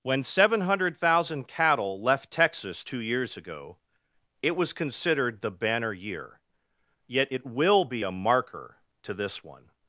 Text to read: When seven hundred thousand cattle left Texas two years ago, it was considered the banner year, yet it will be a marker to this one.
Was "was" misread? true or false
false